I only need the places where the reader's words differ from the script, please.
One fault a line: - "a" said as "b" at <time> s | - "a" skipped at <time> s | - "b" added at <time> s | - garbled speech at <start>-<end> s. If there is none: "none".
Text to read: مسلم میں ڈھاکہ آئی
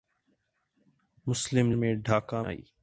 none